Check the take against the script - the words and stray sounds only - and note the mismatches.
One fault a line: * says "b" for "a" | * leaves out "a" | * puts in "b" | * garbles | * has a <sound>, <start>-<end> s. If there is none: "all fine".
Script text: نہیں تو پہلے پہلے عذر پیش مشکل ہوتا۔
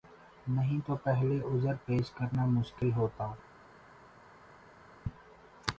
* leaves out "پہلے"
* puts in "کرنا"